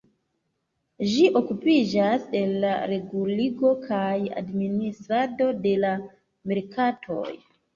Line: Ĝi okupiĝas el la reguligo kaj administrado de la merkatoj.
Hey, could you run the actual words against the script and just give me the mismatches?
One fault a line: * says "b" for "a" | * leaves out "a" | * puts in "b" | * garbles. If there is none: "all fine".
all fine